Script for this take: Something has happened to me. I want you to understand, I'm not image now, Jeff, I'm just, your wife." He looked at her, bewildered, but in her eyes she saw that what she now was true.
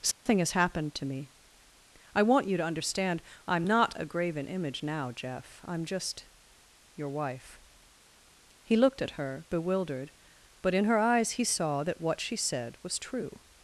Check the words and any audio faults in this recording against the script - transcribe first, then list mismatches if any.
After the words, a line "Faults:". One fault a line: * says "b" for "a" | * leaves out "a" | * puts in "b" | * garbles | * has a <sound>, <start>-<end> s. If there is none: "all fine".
Something has happened to me. I want you to understand, I'm not a graven image now, Jeff, I'm just, your wife." He looked at her, bewildered, but in her eyes he saw that what she said was true.
Faults:
* has a dropout, 0.1-0.3 s
* puts in "a graven"
* says "he" for "she"
* says "said" for "now"